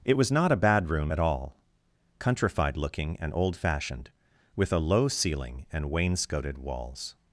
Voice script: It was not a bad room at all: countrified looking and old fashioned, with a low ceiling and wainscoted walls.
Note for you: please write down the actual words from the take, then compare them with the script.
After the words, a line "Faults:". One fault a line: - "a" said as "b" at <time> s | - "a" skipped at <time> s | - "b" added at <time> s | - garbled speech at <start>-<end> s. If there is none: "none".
It was not a bad room at all: countrified looking and old fashioned, with a low ceiling and wainscoted walls.
Faults:
none